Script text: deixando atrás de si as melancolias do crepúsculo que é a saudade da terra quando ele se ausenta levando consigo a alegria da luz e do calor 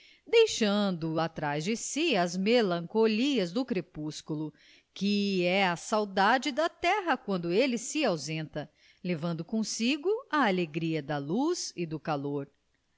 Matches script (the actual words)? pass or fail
pass